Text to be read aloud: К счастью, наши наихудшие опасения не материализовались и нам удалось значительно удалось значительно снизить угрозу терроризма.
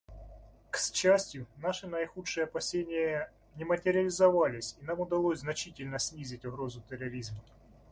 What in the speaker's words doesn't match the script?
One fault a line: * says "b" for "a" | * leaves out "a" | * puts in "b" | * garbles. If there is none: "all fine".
* leaves out "удалось значительно"